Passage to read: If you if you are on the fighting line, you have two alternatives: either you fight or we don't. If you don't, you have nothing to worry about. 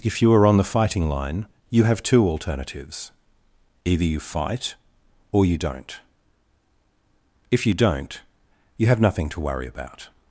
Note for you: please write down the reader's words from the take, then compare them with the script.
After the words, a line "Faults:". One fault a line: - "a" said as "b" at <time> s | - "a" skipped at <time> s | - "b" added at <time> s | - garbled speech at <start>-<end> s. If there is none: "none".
If you are on the fighting line, you have two alternatives: either you fight or you don't. If you don't, you have nothing to worry about.
Faults:
- "if you" skipped at 0.3 s
- "we" said as "you" at 5.5 s